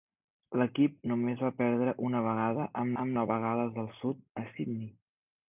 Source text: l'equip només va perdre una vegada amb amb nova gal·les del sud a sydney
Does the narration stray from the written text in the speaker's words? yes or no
no